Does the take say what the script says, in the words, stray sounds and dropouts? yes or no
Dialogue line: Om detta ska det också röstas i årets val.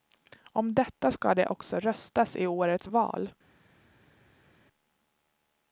yes